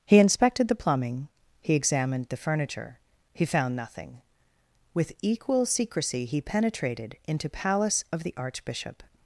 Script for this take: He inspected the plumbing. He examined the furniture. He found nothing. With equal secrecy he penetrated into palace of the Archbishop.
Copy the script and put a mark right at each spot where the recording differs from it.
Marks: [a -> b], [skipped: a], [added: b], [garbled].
He inspected the plumbing. He examined the furniture. He found nothing. With equal secrecy he penetrated into palace of the Archbishop.